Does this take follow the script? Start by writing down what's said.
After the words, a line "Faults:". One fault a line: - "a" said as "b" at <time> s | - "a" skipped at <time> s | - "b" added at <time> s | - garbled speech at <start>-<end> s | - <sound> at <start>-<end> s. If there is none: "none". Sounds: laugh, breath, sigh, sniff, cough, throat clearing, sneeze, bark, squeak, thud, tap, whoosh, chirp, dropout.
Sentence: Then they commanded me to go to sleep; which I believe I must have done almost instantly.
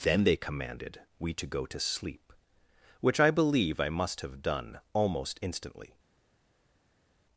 Then they commanded we to go to sleep; which I believe I must have done almost instantly.
Faults:
- "me" said as "we" at 1.2 s